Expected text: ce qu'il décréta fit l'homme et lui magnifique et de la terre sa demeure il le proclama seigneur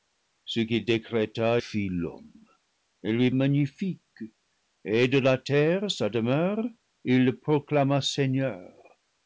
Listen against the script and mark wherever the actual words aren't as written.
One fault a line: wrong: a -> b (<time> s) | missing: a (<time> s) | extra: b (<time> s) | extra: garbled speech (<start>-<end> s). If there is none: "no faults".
no faults